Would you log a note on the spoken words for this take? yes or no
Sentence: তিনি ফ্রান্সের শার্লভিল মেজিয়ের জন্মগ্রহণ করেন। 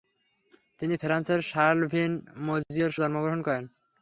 no